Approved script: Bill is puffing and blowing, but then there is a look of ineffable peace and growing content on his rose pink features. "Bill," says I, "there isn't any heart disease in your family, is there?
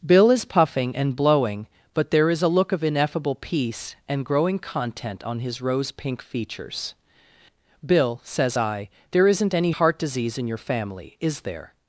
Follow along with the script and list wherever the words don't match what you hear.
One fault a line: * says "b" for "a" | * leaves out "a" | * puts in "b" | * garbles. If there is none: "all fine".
* leaves out "then"